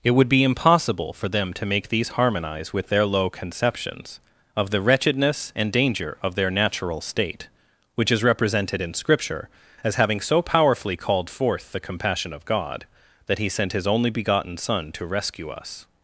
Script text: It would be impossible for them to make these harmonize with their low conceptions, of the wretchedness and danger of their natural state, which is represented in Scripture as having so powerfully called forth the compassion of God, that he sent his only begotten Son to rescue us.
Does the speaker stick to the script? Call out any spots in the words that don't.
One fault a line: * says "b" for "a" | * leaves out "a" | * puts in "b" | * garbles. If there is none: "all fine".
all fine